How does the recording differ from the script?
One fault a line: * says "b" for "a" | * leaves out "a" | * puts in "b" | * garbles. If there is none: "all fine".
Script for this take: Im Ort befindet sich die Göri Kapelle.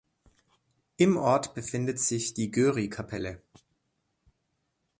all fine